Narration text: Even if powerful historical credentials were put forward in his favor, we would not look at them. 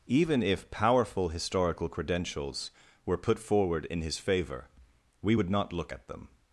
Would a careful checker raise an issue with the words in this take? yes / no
no